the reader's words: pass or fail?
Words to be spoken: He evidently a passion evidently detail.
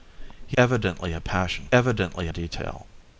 pass